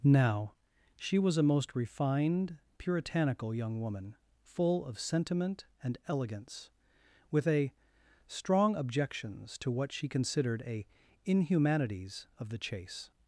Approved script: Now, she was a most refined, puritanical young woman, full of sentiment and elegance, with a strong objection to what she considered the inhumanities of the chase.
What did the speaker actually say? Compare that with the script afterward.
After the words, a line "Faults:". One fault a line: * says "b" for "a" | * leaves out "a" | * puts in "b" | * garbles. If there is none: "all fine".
Now, she was a most refined, puritanical young woman, full of sentiment and elegance, with a strong objections to what she considered a inhumanities of the chase.
Faults:
* says "objections" for "objection"
* says "a" for "the"